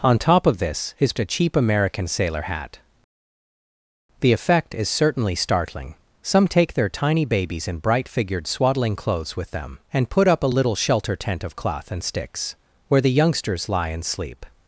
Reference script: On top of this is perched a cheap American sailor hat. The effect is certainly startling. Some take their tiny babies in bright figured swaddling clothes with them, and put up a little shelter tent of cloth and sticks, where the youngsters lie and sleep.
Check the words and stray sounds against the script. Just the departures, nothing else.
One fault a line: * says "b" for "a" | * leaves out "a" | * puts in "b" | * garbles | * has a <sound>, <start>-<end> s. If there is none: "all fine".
* leaves out "perched"